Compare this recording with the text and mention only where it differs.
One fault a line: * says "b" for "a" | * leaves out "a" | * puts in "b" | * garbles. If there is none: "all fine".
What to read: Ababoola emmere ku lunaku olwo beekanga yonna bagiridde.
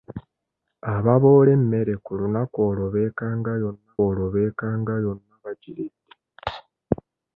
* puts in "olwo beekanga yonna"